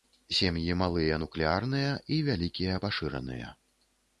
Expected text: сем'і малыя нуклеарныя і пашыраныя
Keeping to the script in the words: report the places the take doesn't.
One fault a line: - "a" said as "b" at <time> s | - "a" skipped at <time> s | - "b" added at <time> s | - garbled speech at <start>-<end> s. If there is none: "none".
- "вялікія" added at 2.3 s